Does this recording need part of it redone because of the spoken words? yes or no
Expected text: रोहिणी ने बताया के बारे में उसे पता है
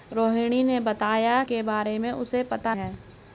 no